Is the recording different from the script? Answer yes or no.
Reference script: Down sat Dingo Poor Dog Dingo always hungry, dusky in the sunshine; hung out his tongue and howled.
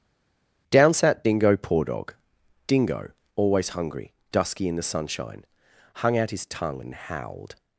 no